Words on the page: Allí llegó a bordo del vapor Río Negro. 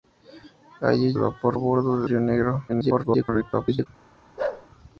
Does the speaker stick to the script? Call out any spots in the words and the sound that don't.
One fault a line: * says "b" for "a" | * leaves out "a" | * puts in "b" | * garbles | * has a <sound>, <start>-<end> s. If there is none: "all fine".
* says "vapor" for "llegó"
* leaves out "vapor"
* garbles
* has a bark, 4.4-4.7 s